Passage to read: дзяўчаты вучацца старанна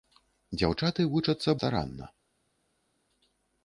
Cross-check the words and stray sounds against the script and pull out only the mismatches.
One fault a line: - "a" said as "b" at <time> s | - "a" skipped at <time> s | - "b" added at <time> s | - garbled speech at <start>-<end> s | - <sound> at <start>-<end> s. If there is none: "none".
none